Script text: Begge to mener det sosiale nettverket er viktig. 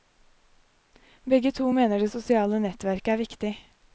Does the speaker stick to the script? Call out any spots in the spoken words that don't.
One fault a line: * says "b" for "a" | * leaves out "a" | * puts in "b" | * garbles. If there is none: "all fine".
all fine